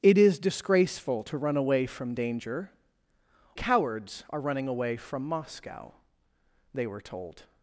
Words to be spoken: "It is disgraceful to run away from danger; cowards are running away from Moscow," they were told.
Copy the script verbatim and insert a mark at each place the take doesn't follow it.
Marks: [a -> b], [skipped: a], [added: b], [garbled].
"It is disgraceful to run away from danger; cowards are running away from Moscow," they were told.